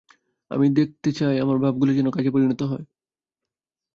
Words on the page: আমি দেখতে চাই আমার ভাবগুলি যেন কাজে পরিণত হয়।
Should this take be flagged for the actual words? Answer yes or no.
no